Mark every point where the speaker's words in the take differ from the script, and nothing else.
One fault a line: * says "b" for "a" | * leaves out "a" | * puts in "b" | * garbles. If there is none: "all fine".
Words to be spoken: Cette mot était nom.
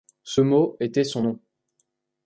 * says "Ce" for "Cette"
* puts in "son"